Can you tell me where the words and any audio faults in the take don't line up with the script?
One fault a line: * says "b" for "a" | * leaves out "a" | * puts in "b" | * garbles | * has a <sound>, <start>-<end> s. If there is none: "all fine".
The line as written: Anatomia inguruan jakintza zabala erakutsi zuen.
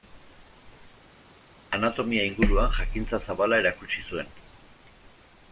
all fine